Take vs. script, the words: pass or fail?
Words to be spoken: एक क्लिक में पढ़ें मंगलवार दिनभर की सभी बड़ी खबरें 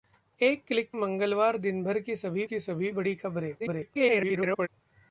fail